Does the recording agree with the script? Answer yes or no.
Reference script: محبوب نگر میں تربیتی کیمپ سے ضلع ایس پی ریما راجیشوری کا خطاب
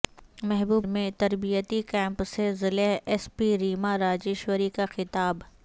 no